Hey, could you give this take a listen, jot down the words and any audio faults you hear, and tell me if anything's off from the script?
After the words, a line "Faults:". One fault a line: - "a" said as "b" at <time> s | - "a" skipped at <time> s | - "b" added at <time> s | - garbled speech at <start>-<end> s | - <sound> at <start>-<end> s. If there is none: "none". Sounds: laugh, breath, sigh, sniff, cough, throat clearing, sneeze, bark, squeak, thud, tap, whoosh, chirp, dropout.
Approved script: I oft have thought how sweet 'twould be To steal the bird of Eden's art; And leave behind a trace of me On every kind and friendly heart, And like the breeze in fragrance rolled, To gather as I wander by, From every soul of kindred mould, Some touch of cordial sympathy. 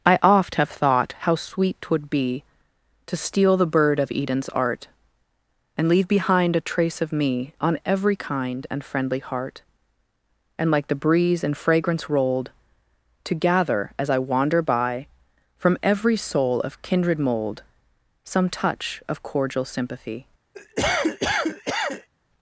I oft have thought how sweet 'twould be To steal the bird of Eden's art; And leave behind a trace of me On every kind and friendly heart, And like the breeze in fragrance rolled, To gather as I wander by, From every soul of kindred mould, Some touch of cordial sympathy.
Faults:
- cough at 20.5-22.1 s